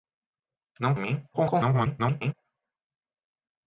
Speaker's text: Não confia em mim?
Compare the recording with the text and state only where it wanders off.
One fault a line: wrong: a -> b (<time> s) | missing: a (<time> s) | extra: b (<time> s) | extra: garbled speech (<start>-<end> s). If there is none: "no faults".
missing: confia (0.9 s)
extra: garbled speech (1.3-2.3 s)